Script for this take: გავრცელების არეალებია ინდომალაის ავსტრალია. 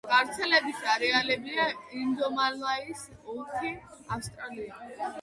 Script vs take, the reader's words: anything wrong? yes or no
yes